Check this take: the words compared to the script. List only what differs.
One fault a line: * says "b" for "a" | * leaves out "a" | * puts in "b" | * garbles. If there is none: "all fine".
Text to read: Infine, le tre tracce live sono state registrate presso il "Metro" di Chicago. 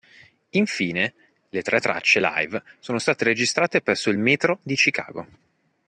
all fine